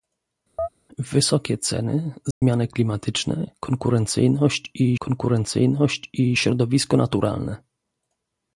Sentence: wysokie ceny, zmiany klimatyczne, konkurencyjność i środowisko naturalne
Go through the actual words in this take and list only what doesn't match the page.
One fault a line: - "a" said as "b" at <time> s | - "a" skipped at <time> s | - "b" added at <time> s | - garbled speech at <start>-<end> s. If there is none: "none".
- "konkurencyjność i" added at 5.0 s